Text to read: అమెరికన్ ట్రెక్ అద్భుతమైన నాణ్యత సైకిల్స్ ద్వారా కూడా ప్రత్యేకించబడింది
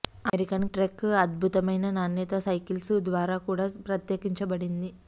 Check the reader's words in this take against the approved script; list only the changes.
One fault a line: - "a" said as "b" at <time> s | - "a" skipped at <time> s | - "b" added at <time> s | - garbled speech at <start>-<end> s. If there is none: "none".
none